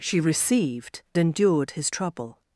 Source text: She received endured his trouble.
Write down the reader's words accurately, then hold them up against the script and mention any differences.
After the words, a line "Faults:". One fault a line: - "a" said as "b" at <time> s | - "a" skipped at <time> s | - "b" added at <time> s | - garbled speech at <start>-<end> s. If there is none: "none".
She received endured his trouble.
Faults:
none